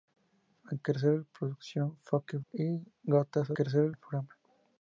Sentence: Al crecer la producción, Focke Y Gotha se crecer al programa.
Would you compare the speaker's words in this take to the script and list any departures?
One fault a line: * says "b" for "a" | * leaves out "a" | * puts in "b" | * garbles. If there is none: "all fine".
all fine